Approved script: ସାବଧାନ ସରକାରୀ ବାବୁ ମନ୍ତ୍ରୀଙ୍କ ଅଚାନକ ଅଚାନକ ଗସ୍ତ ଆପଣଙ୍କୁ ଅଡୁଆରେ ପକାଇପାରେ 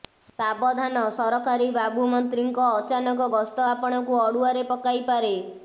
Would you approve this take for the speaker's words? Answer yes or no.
no